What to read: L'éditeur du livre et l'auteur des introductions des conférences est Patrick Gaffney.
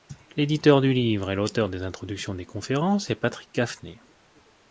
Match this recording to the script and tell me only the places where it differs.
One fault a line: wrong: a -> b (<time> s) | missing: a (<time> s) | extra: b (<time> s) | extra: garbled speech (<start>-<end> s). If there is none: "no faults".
no faults